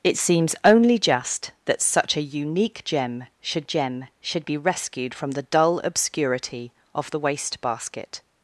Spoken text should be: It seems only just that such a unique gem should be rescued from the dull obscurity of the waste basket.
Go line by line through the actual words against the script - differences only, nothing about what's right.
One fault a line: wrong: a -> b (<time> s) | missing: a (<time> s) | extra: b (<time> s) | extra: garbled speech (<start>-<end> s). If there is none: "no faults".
extra: gem should (3.7 s)